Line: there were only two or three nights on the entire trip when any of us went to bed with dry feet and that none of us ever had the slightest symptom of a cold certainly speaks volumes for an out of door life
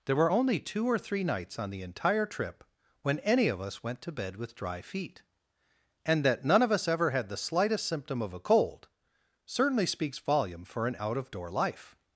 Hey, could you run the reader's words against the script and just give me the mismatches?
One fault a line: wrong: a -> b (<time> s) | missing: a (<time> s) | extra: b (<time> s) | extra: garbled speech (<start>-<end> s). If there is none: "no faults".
wrong: volumes -> volume (10.2 s)